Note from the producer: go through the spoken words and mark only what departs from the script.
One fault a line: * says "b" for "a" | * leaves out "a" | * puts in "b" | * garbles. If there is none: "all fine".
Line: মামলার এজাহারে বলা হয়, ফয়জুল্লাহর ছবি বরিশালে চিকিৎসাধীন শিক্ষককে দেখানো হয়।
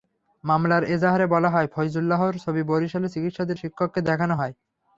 all fine